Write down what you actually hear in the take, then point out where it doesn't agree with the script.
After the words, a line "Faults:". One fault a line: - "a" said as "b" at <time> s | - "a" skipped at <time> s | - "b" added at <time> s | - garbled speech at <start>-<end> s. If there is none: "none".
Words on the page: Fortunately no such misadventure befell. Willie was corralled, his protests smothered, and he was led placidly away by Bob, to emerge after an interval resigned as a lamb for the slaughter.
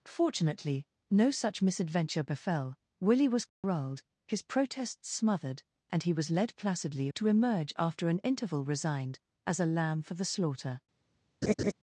Fortunately no such misadventure befell. Willie was corralled, his protests smothered, and he was led placidly to emerge after an interval resigned as a lamb for the slaughter.
Faults:
- "away by Bob" skipped at 7.1 s